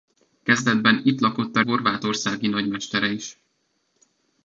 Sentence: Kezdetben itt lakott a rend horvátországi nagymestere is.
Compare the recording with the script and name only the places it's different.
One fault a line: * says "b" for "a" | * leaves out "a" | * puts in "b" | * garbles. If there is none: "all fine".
* leaves out "rend"